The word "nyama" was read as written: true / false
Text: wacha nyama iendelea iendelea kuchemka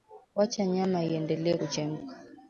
true